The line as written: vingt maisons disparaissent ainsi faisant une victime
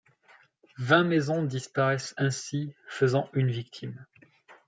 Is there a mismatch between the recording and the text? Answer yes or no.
no